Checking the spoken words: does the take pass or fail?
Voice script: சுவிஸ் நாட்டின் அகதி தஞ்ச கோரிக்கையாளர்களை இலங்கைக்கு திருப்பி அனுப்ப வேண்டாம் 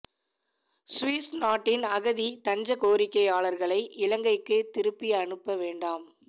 pass